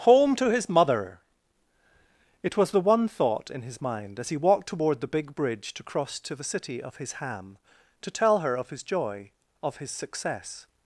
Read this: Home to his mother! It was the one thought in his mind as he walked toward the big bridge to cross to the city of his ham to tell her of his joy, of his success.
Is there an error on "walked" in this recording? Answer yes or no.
no